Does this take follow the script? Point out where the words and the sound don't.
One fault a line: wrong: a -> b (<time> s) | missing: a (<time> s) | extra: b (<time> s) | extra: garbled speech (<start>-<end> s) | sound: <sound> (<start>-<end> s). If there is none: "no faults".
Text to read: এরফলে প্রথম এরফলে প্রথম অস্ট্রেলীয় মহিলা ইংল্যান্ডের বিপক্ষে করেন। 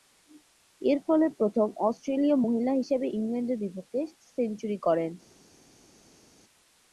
missing: এরফলে প্রথম (1.7 s)
extra: হিসেবে (2.7 s)
extra: সেঞ্চুরি (4.3 s)